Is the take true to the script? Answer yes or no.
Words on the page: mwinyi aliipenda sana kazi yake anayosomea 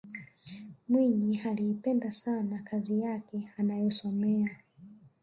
yes